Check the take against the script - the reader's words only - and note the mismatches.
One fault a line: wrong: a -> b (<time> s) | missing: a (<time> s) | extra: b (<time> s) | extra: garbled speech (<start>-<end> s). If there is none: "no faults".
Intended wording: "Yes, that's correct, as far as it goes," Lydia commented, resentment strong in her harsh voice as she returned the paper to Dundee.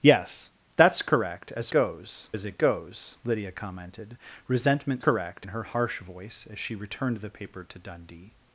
wrong: far -> goes (1.7 s)
wrong: strong -> correct (5.0 s)